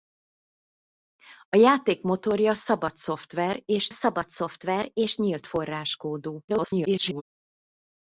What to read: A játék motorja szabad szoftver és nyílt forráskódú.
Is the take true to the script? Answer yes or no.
no